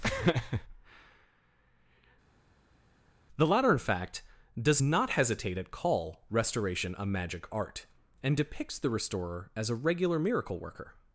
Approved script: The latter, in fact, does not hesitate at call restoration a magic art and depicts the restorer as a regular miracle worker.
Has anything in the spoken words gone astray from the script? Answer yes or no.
no